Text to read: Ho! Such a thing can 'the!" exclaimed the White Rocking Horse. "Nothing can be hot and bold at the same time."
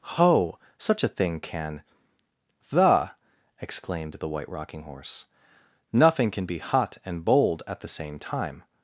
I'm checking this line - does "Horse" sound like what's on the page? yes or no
yes